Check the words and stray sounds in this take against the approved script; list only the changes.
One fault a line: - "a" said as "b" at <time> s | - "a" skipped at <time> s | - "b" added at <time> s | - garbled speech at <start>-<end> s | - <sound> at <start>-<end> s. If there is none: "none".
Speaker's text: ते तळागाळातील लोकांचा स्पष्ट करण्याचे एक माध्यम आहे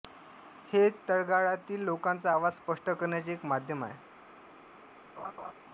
- "ते" said as "हे" at 0.7 s
- "आवाज" added at 2.3 s
- laugh at 5.2-5.5 s